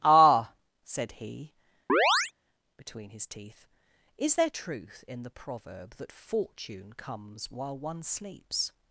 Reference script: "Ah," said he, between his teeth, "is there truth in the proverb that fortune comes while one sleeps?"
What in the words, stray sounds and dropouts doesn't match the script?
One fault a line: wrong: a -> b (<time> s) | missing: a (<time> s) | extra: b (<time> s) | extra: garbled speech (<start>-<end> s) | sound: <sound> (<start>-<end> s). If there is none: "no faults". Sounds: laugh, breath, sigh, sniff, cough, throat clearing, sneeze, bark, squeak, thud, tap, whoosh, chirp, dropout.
sound: chirp (1.9-2.3 s)